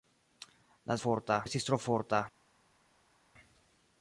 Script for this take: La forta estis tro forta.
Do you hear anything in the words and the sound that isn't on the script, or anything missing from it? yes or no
no